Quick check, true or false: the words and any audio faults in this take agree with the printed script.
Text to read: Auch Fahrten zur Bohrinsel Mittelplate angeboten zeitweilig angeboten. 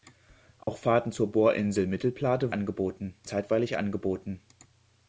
false